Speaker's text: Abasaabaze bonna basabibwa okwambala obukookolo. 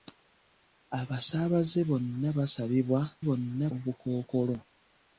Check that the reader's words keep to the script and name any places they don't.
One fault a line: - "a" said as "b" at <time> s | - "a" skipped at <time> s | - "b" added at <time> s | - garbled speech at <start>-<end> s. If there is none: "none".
- "okwambala" said as "bonna" at 3.3 s